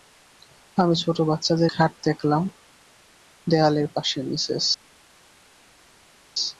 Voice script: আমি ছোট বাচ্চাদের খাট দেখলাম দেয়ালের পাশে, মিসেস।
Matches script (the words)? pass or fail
pass